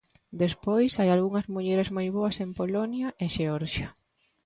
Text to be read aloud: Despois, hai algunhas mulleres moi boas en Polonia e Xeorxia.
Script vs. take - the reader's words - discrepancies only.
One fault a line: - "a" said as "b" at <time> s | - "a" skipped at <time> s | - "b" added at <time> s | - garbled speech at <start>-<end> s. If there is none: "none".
none